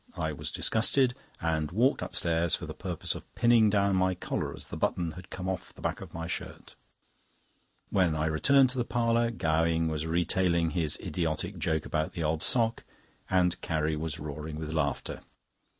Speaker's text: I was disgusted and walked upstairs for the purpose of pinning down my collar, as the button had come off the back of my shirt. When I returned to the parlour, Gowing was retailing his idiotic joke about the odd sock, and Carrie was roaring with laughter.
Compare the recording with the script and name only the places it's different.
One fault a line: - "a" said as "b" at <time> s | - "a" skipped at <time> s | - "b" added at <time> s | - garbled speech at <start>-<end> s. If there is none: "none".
none